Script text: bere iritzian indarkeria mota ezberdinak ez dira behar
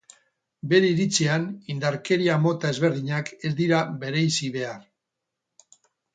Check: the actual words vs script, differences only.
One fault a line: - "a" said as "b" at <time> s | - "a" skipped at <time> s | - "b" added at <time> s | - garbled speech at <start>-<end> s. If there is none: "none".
- "bereizi" added at 4.1 s